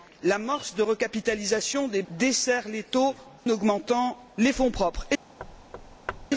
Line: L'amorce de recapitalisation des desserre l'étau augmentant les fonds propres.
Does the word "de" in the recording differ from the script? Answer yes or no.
no